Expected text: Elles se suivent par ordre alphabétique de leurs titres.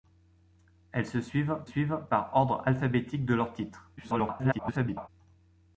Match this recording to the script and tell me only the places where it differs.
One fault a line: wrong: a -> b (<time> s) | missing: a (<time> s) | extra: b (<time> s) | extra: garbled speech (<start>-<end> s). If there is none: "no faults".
extra: suivent (1.6 s)
extra: garbled speech (4.0-5.1 s)